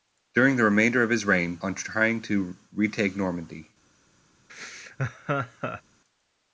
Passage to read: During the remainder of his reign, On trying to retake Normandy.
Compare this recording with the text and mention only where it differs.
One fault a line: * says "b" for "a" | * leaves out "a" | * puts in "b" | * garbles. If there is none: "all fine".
all fine